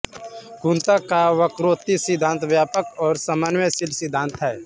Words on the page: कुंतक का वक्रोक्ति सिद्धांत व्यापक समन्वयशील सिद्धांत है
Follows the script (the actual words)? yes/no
no